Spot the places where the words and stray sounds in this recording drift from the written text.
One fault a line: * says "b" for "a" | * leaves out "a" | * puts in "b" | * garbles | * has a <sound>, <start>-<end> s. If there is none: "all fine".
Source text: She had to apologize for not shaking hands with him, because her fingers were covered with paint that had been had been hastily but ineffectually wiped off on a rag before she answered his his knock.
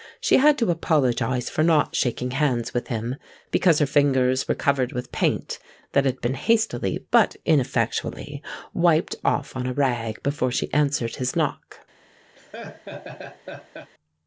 * leaves out "had been"
* leaves out "his"
* has a laugh, 12.3-13.9 s